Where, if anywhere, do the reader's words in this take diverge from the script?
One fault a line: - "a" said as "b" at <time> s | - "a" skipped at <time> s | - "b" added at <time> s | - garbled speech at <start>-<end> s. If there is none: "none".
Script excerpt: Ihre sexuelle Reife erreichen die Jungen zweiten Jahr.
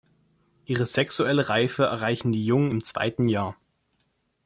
- "im" added at 2.7 s